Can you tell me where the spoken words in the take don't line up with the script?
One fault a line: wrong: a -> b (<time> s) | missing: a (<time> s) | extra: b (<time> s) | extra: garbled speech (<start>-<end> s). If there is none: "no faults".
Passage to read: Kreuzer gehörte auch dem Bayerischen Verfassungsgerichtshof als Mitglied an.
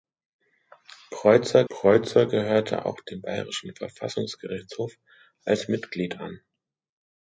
extra: kreuzer (1.7 s)